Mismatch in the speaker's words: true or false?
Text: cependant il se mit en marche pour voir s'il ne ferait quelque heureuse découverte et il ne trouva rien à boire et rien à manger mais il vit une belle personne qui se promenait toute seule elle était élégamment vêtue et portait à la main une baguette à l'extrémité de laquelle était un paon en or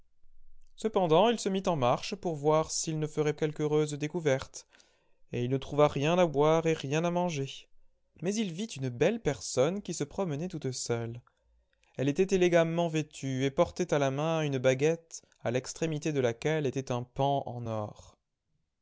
false